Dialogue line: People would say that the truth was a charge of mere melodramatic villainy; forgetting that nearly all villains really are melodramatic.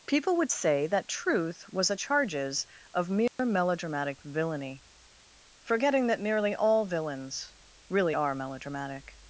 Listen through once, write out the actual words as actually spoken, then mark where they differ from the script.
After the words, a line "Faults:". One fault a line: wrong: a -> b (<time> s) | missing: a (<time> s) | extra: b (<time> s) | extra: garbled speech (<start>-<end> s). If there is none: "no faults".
People would say that truth was a charges of mere melodramatic villainy; forgetting that nearly all villains really are melodramatic.
Faults:
missing: the (1.1 s)
wrong: charge -> charges (1.9 s)